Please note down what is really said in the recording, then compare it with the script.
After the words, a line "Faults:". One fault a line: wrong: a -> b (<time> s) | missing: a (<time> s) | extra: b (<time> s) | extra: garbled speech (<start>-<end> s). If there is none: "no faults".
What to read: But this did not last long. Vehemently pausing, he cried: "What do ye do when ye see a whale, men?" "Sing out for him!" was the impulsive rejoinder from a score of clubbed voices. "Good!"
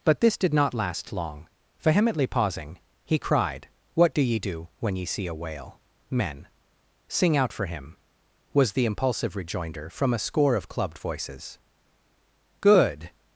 But this did not last long. Vehemently pausing, he cried: "What do ye do when ye see a whale, men?" "Sing out for him!" was the impulsive rejoinder from a score of clubbed voices. "Good!"
Faults:
no faults